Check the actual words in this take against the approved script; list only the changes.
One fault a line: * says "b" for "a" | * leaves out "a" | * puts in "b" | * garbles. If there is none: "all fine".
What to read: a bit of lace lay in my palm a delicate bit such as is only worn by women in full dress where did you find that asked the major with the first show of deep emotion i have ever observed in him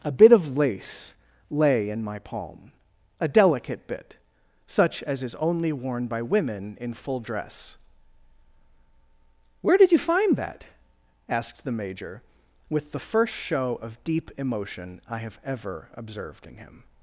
all fine